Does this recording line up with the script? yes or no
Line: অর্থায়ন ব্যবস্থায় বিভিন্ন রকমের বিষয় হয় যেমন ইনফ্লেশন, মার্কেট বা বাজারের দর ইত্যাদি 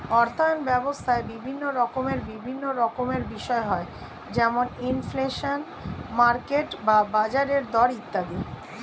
no